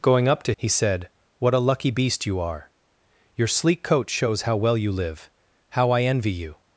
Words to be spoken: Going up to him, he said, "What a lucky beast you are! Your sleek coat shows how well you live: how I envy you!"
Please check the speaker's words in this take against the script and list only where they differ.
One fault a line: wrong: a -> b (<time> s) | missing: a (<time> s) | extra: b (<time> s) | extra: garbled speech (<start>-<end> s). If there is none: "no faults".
missing: him (0.5 s)